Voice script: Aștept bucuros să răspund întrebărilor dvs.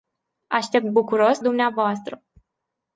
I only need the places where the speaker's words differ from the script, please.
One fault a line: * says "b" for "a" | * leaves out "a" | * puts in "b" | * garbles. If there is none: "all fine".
* leaves out "să răspund întrebărilor"